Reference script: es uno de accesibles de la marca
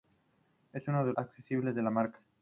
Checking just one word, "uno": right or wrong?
right